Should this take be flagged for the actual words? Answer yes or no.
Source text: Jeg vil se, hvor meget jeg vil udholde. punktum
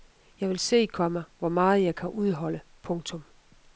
yes